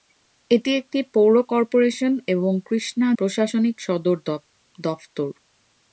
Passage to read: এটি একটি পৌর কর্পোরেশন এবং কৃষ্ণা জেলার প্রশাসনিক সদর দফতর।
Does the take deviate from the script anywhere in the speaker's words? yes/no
yes